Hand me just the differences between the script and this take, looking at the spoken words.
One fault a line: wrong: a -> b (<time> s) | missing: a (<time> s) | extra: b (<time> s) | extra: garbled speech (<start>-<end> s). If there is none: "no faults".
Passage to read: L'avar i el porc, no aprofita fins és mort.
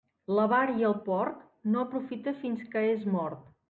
extra: que (2.8 s)